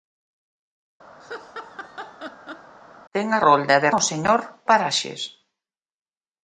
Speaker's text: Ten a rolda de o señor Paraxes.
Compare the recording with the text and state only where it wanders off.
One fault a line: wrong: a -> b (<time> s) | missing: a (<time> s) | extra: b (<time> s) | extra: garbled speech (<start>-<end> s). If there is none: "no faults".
no faults